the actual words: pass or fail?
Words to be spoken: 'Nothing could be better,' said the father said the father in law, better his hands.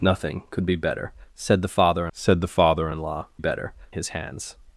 pass